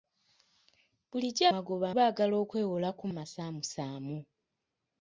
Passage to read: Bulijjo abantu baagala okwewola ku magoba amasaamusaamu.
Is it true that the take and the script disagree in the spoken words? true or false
true